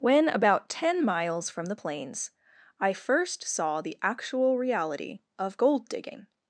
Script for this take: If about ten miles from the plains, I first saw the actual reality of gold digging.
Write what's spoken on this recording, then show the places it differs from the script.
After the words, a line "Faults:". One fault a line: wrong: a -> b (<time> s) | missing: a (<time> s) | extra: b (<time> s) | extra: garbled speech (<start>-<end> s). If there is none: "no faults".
When about ten miles from the plains, I first saw the actual reality of gold digging.
Faults:
wrong: If -> When (0.0 s)